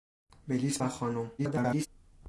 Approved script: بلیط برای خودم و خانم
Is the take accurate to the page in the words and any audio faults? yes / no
no